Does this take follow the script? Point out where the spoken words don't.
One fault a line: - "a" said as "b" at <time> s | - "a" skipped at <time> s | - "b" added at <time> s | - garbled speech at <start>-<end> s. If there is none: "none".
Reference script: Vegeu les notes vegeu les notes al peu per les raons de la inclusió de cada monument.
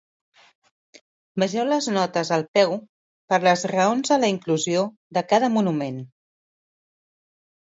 - "vegeu les notes" skipped at 2.3 s